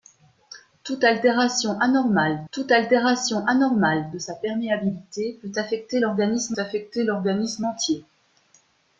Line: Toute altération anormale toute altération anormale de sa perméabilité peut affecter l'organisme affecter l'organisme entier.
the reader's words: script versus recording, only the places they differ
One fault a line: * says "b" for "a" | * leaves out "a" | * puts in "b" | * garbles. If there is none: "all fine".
all fine